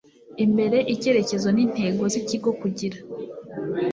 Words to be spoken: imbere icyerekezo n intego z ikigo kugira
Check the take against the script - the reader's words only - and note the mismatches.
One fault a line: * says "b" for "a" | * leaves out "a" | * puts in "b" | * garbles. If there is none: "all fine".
all fine